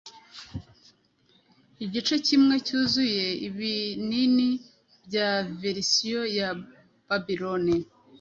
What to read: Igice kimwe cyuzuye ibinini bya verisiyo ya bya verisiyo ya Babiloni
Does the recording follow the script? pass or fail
fail